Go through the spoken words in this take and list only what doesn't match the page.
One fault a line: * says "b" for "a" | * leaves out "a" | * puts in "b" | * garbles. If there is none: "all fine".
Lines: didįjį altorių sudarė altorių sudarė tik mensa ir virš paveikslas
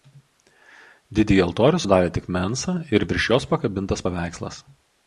* leaves out "altorių sudarė"
* puts in "jos pakabintas"